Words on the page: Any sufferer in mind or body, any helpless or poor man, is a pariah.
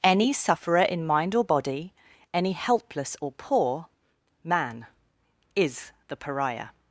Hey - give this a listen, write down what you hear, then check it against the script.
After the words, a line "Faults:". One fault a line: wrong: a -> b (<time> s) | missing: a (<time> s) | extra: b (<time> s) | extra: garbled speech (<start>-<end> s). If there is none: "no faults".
Any sufferer in mind or body, any helpless or poor man, is the pariah.
Faults:
wrong: a -> the (6.1 s)